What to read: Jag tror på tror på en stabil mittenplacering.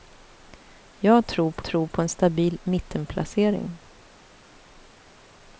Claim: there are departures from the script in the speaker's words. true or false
false